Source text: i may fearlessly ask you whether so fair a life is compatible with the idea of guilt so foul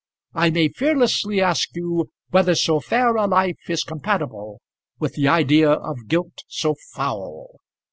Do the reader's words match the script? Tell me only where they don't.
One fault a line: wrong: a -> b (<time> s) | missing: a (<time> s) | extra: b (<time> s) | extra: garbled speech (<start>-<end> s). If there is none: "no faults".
no faults